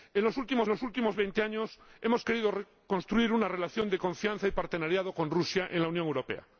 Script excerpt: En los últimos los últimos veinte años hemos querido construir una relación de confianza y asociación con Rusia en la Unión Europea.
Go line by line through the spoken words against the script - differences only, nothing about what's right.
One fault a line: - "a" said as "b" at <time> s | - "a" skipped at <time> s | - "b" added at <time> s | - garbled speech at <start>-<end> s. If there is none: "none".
none